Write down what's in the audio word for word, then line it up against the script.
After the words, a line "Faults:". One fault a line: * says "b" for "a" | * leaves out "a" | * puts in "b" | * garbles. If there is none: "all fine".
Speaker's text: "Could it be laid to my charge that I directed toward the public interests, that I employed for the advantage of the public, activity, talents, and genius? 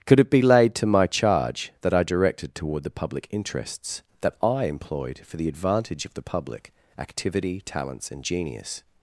"Could it be laid to my charge that I directed toward the public interests, that I employed for the advantage of the public, activity, talents, and genius?
Faults:
all fine